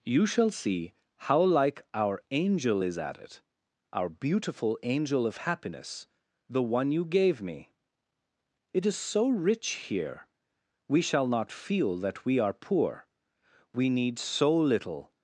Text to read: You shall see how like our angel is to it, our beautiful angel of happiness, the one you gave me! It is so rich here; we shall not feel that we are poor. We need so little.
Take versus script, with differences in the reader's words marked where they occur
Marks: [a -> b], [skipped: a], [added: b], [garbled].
You shall see how like our angel is [to -> at] it, our beautiful angel of happiness, the one you gave me! It is so rich here; we shall not feel that we are poor. We need so little.